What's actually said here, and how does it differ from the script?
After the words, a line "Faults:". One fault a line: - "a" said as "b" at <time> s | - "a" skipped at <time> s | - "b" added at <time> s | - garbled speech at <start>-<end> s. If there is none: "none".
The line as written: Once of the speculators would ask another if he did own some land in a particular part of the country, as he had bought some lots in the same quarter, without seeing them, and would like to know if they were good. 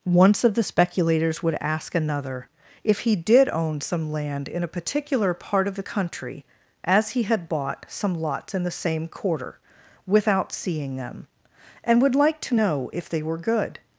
Once of the speculators would ask another if he did own some land in a particular part of the country, as he had bought some lots in the same quarter, without seeing them, and would like to know if they were good.
Faults:
none